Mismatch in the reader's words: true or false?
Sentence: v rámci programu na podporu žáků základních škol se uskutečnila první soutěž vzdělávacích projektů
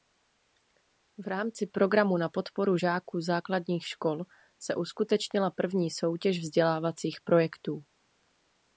false